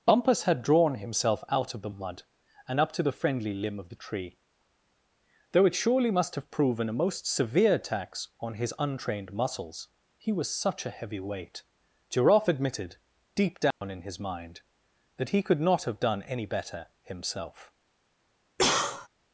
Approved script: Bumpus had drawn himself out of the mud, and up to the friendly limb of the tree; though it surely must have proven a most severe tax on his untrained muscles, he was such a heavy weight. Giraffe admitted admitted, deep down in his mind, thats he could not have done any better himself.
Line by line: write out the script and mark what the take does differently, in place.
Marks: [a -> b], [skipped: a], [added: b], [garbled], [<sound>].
Bumpus had drawn himself out of the mud, and up to the friendly limb of the tree; though it surely must have proven a most severe tax on his untrained muscles, he was such a heavy weight. Giraffe admitted [skipped: admitted,] deep down [dropout] in his mind, [thats -> that] he could not have done any better himself. [cough]